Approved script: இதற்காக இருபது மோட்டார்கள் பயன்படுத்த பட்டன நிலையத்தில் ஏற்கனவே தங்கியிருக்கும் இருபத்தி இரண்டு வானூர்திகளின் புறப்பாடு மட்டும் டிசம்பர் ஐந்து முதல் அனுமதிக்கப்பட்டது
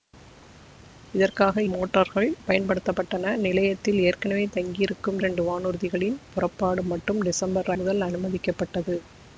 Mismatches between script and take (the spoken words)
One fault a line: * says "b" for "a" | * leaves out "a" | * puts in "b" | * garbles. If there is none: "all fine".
* leaves out "இருபது"
* leaves out "இருபத்தி"
* leaves out "ஐந்து"